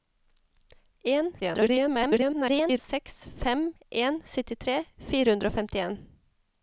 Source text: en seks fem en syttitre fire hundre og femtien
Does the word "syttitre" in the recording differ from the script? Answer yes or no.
no